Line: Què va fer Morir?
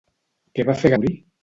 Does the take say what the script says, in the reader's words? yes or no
yes